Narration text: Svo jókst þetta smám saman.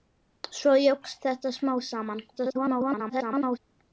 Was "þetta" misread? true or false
false